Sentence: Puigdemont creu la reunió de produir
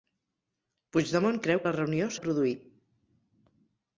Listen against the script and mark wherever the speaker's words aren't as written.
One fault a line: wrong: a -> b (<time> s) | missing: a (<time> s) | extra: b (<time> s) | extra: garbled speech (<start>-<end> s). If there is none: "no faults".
no faults